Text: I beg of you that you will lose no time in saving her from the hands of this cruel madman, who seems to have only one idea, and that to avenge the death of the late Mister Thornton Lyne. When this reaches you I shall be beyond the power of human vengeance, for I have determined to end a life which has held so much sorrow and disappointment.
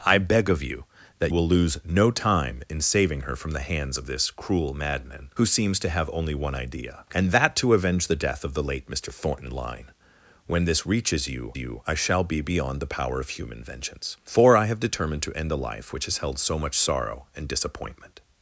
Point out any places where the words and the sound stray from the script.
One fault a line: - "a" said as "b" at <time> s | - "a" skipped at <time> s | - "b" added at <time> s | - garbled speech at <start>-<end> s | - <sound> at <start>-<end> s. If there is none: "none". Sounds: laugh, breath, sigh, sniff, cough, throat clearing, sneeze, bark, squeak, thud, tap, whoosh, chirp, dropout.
- "you" skipped at 1.3 s
- "you" added at 11.5 s